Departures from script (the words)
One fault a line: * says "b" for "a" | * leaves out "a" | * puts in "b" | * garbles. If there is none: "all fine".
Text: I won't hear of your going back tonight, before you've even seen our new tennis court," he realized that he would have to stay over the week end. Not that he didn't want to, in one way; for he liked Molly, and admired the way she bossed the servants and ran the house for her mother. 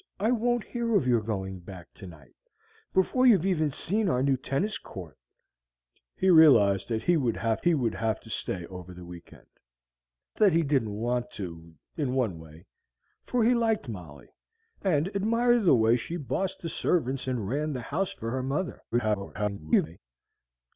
* puts in "he would have"
* leaves out "Not"
* garbles